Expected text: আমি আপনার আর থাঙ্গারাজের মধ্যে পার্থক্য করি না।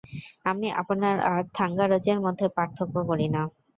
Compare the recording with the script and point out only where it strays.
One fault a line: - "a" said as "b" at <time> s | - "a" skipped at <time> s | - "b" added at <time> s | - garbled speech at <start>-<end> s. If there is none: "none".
none